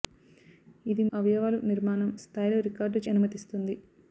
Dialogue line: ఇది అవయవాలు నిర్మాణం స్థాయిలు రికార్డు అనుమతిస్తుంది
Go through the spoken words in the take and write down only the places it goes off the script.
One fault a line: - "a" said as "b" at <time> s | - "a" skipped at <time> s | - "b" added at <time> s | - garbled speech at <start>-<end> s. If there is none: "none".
none